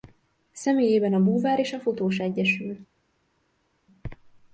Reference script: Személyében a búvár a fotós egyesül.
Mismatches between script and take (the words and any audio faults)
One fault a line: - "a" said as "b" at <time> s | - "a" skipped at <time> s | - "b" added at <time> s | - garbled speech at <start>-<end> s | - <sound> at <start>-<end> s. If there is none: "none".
- "és" added at 1.6 s